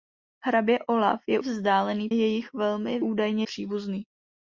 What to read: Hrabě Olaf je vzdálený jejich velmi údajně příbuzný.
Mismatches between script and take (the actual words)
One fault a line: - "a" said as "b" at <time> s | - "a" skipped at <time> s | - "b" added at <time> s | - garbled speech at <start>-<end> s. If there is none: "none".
none